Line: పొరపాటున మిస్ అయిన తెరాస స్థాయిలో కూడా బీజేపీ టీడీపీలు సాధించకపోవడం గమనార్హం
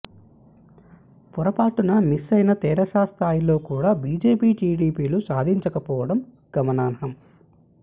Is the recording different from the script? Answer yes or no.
no